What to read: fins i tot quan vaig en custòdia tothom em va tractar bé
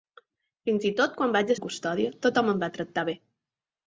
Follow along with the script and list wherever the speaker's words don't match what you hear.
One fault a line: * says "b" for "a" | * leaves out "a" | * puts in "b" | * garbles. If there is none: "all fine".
all fine